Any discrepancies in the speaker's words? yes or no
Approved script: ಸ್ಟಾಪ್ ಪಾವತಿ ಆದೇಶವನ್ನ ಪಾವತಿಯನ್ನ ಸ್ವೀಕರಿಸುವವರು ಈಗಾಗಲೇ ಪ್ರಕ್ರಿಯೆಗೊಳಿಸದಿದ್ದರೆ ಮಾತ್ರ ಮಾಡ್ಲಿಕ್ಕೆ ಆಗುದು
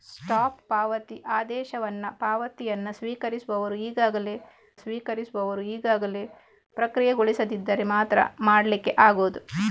yes